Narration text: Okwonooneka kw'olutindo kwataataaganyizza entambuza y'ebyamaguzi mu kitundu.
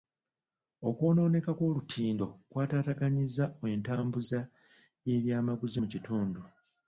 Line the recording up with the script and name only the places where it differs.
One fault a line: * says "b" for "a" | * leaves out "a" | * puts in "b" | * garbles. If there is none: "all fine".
all fine